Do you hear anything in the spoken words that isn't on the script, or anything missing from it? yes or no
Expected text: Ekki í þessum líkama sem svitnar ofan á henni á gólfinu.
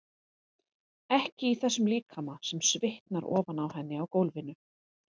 no